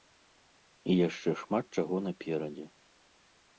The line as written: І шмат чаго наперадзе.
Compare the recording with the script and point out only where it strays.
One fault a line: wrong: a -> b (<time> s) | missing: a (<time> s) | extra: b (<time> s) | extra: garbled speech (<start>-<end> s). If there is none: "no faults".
extra: яшчэ (1.1 s)